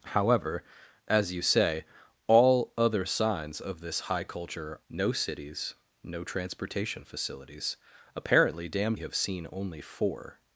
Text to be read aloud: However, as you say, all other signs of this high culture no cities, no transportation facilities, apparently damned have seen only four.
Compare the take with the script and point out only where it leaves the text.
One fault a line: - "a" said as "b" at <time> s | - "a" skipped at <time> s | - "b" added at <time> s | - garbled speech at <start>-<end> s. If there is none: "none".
none